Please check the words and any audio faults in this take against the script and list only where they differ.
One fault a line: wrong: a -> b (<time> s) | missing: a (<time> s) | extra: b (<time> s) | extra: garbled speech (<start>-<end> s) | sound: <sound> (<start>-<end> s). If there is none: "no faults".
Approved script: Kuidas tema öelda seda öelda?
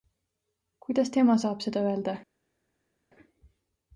wrong: öelda -> saab (1.4 s)